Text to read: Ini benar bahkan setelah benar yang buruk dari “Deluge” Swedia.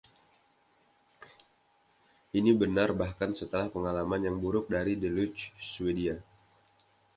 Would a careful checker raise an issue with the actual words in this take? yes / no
yes